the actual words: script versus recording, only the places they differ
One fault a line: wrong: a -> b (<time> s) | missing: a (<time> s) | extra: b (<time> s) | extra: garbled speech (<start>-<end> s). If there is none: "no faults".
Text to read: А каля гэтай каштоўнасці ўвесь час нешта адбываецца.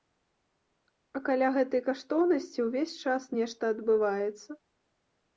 no faults